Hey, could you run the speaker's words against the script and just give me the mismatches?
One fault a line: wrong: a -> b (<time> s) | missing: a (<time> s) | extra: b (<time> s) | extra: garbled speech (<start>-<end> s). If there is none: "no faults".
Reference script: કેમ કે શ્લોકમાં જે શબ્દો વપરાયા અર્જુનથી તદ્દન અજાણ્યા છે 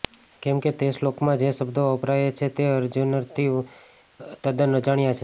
extra: તે (0.7 s)
extra: છે તે (2.4 s)